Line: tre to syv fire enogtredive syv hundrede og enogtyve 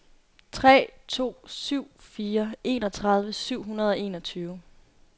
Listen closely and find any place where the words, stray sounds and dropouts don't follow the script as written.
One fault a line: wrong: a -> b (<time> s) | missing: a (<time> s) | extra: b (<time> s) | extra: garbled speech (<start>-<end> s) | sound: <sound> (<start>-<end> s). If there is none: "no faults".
no faults